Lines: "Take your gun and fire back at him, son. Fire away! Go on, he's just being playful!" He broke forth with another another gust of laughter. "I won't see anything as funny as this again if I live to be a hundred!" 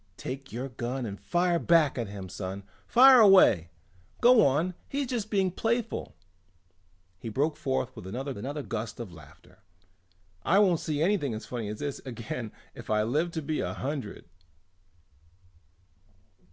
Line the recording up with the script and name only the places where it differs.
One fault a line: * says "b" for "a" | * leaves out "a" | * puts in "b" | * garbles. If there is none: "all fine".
all fine